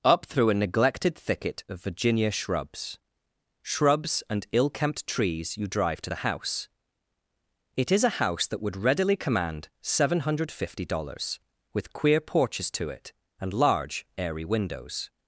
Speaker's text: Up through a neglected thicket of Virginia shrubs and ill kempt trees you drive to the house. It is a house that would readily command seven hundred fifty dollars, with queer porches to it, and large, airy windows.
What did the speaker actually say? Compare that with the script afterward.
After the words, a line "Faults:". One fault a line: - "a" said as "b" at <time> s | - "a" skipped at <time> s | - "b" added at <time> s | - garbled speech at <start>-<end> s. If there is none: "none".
Up through a neglected thicket of Virginia shrubs shrubs and ill kempt trees you drive to the house. It is a house that would readily command seven hundred fifty dollars, with queer porches to it, and large, airy windows.
Faults:
- "shrubs" added at 3.6 s